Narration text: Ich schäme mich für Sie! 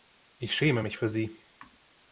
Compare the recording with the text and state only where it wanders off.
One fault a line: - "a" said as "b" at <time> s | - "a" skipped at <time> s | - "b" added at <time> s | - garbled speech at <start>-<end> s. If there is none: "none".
none